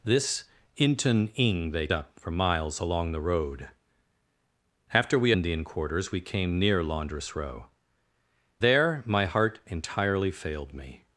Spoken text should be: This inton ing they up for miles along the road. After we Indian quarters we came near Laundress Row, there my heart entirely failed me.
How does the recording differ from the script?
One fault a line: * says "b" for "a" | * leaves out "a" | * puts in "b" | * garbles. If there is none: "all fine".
all fine